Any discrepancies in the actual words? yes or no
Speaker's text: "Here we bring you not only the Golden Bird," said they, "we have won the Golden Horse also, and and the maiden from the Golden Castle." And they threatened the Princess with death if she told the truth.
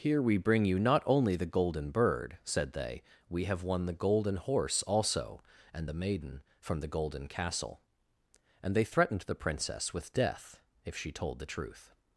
yes